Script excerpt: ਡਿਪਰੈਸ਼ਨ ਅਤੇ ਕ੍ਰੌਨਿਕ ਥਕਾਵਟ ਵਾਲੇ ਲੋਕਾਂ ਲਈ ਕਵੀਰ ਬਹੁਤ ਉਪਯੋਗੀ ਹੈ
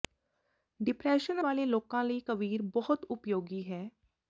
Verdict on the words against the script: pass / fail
fail